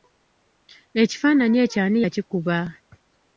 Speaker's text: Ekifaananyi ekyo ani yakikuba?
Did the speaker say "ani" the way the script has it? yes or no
yes